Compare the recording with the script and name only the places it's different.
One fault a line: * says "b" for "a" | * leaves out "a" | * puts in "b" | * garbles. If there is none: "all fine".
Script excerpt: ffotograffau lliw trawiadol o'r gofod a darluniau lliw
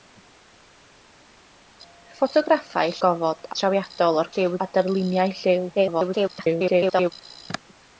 * says "gofod" for "lliw"
* says "lliw" for "gofod"
* garbles